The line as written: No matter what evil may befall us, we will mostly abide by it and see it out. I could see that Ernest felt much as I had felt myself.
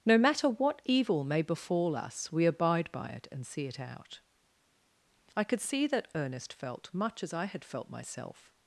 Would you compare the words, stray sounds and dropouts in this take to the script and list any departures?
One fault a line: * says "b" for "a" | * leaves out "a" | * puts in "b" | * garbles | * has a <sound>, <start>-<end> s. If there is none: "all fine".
* leaves out "will mostly"